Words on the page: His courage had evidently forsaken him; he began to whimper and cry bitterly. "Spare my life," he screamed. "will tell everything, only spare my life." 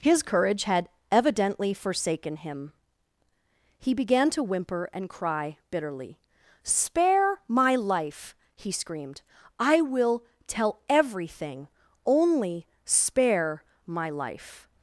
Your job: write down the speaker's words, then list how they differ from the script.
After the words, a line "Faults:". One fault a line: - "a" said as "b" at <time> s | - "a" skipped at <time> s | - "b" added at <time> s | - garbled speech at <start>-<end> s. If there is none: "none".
His courage had evidently forsaken him; he began to whimper and cry bitterly. "Spare my life," he screamed. "I will tell everything, only spare my life."
Faults:
- "I" added at 9.6 s